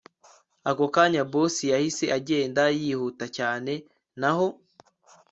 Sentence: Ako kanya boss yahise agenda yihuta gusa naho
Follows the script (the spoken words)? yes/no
no